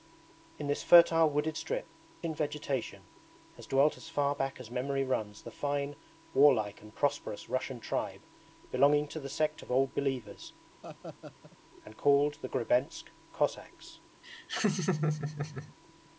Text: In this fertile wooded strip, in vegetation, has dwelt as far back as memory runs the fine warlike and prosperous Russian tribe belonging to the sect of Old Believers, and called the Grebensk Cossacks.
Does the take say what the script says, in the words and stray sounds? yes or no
no